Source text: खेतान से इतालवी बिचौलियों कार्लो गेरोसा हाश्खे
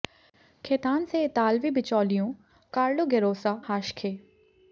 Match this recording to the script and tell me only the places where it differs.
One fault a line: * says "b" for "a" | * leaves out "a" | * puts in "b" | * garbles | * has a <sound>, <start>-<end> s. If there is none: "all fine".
all fine